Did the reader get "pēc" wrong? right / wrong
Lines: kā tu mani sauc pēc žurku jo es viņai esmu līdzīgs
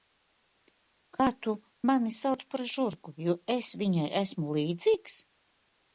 wrong